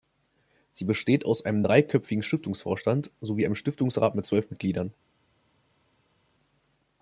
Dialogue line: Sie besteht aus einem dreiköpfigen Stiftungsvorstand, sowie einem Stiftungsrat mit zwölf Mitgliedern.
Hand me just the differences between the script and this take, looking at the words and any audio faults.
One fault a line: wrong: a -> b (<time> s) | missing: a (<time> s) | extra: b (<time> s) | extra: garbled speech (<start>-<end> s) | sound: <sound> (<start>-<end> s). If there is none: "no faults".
no faults